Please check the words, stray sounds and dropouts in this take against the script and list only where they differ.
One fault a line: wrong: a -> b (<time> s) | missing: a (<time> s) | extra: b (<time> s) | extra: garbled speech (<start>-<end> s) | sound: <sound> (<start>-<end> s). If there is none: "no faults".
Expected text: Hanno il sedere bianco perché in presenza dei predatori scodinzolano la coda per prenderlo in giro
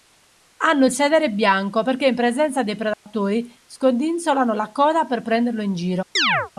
sound: dropout (2.9-3.1 s)
sound: chirp (6.2-6.5 s)